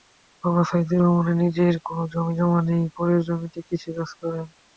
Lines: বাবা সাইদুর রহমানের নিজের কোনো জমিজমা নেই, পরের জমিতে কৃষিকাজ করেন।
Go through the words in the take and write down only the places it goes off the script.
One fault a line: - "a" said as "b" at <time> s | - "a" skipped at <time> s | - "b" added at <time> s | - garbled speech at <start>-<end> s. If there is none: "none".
none